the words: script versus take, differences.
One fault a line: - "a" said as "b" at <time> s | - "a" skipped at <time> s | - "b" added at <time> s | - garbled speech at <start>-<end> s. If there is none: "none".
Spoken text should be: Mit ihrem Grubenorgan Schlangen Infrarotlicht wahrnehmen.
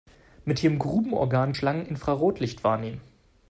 none